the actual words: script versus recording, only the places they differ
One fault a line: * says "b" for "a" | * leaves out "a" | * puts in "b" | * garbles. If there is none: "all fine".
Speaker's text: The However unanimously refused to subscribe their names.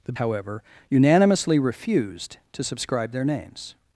all fine